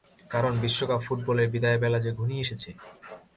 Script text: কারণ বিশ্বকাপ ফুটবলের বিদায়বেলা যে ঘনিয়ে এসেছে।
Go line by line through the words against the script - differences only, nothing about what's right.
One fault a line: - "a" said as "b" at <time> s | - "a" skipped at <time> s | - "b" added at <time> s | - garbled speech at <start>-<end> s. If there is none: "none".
none